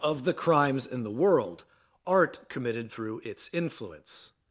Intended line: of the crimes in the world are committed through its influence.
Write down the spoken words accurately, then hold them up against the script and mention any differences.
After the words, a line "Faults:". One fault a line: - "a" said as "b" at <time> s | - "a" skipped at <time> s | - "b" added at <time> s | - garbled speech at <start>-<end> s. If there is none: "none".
of the crimes in the world art committed through its influence.
Faults:
- "are" said as "art" at 2.0 s